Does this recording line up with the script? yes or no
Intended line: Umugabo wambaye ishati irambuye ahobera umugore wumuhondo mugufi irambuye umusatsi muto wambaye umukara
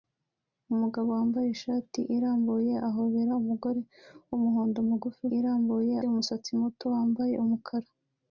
yes